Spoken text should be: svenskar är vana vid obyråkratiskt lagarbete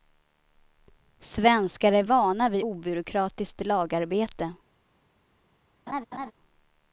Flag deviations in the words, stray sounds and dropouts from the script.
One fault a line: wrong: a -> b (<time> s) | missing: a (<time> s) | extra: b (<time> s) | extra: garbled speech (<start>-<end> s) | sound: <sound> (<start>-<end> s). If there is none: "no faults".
sound: laugh (5.9-6.3 s)